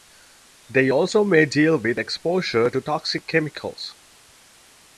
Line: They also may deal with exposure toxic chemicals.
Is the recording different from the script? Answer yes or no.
yes